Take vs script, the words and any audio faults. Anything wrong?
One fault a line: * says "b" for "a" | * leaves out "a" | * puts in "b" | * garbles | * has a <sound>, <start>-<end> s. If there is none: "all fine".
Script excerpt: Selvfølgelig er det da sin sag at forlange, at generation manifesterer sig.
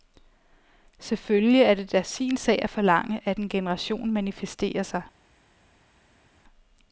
* puts in "en"